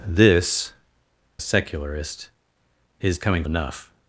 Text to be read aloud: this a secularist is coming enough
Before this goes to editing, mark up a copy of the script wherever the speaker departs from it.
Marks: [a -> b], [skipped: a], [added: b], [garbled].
this a secularist is coming enough